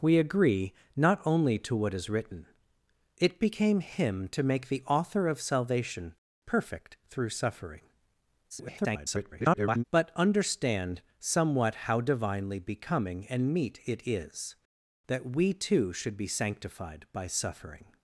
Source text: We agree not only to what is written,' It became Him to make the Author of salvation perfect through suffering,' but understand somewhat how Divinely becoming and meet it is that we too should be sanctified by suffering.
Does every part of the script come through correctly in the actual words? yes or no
no